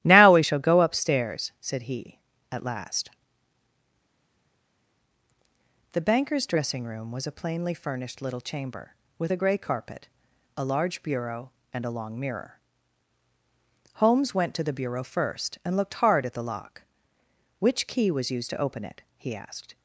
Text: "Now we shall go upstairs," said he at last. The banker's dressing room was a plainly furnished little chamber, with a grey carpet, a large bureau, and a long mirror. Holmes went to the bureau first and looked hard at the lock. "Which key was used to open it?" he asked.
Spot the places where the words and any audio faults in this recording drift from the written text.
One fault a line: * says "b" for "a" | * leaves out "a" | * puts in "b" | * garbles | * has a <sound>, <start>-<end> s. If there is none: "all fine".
all fine